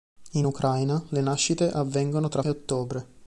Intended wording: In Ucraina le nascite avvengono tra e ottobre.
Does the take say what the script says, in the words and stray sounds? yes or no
yes